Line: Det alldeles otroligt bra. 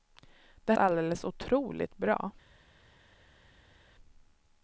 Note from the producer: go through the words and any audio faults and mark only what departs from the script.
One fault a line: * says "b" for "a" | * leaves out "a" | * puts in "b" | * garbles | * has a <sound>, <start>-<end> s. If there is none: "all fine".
all fine